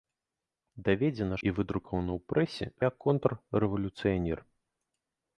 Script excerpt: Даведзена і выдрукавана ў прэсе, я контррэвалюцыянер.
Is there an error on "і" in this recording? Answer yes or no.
no